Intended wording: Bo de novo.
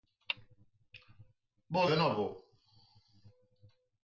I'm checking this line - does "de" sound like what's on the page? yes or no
yes